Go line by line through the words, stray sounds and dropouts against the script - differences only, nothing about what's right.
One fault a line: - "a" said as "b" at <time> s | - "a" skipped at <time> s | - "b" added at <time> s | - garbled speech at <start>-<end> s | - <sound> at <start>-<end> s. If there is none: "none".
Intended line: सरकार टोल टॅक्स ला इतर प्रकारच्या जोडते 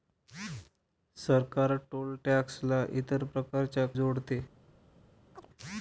- chirp at 5.3-5.5 s